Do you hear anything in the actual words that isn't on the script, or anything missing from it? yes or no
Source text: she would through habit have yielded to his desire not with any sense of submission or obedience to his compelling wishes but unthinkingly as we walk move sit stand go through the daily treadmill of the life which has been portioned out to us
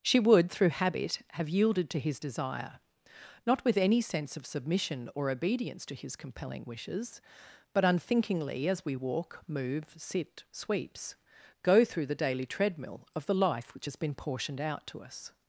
yes